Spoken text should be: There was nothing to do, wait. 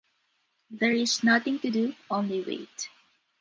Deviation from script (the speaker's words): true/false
true